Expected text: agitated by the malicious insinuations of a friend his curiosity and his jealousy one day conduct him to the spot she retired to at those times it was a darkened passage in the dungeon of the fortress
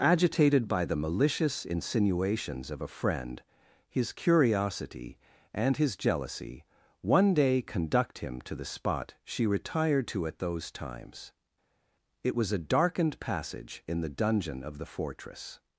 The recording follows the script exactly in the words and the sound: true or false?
true